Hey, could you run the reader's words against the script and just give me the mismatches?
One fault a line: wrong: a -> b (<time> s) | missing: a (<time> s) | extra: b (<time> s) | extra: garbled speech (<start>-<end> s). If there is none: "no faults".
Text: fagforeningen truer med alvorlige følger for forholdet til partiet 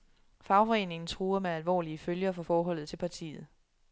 no faults